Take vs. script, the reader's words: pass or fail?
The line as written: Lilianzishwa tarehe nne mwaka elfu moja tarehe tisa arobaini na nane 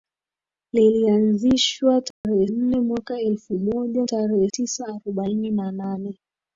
pass